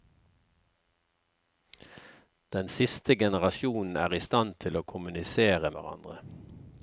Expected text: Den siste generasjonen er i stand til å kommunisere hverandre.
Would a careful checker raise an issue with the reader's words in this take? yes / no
no